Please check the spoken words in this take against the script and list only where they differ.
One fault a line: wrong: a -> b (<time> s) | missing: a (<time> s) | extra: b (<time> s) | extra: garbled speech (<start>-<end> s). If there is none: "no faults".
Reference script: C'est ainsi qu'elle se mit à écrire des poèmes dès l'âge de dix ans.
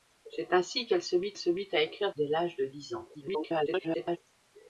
extra: se mit (1.4 s)
missing: des poèmes (2.1 s)
extra: garbled speech (3.1-4.2 s)